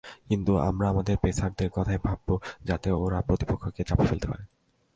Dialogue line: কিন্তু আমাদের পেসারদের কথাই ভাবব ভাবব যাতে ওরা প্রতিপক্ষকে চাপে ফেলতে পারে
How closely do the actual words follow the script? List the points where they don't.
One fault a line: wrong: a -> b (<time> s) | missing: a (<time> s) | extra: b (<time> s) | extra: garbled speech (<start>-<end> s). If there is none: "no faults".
extra: আমরা (0.6 s)
missing: ভাবব (2.3 s)